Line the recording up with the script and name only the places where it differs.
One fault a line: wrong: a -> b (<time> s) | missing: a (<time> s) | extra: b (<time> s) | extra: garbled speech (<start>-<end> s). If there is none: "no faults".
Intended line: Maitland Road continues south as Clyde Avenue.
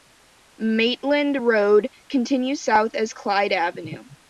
no faults